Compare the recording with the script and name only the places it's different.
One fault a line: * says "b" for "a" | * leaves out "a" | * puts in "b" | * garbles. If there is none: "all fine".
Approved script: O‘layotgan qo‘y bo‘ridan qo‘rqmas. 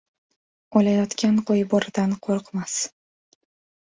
all fine